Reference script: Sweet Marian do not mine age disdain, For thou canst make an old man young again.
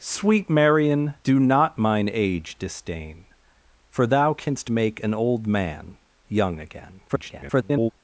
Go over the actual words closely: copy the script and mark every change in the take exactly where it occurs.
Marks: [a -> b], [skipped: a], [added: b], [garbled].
Sweet Marian do not mine age disdain, For thou canst make an old man young again. [garbled]